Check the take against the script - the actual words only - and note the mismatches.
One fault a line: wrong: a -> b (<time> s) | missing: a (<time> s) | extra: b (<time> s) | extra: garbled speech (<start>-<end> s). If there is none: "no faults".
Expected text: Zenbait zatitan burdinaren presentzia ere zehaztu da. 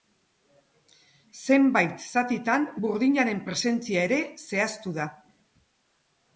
no faults